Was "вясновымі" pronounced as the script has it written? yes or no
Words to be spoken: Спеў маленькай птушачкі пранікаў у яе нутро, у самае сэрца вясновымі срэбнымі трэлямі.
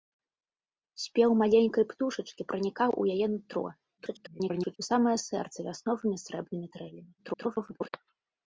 yes